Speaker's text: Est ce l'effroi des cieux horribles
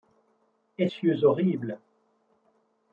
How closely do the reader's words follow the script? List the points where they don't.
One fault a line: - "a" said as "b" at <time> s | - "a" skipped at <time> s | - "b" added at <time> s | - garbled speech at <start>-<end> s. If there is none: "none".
- "ce l'effroi des" skipped at 0.9 s